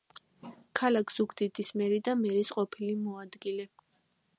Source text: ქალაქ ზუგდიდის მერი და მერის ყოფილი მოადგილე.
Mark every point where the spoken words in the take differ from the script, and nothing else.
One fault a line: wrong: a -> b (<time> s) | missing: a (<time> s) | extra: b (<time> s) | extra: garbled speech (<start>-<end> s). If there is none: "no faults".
no faults